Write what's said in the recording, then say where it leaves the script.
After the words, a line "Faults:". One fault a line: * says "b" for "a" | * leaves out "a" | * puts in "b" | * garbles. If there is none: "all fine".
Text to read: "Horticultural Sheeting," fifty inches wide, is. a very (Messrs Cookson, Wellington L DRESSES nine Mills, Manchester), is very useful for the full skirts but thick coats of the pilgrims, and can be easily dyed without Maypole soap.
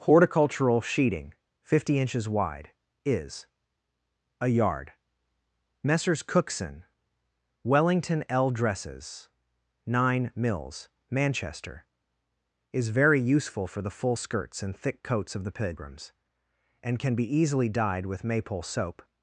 "Horticultural Sheeting," fifty inches wide, is. a yard (Messrs Cookson, Wellington L DRESSES nine Mills, Manchester), is very useful for the full skirts and thick coats of the pilgrims, and can be easily dyed with Maypole soap.
Faults:
* says "yard" for "very"
* says "and" for "but"
* says "with" for "without"